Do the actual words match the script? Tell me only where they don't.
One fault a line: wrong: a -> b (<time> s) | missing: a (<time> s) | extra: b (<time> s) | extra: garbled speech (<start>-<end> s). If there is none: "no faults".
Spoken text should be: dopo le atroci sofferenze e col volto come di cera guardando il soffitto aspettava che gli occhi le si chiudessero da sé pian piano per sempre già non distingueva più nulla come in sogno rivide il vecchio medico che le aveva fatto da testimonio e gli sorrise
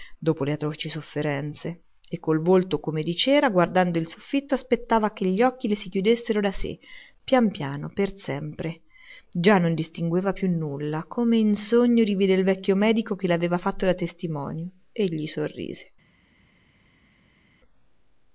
no faults